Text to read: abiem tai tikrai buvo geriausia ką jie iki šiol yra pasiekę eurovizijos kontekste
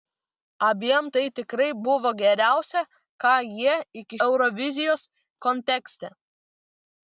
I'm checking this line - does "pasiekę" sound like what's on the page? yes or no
no